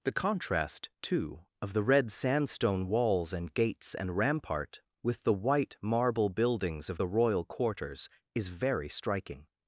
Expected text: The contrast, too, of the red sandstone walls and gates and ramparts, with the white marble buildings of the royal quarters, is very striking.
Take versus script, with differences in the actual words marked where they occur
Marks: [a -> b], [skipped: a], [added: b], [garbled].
The contrast, too, of the red sandstone walls and gates and [ramparts, -> rampart] with the white marble buildings of the royal quarters, is very striking.